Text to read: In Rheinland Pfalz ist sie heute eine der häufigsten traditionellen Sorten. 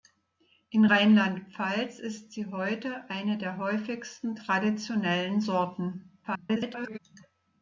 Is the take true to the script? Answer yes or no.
no